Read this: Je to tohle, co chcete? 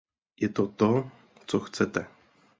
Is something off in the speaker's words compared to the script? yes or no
yes